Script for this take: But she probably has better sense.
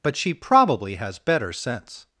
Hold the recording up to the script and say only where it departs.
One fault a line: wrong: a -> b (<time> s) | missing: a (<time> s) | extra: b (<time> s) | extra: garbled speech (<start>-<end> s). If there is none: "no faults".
no faults